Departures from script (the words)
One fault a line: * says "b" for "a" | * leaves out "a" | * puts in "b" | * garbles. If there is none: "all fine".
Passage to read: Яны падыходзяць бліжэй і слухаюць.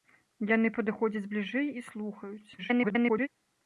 * garbles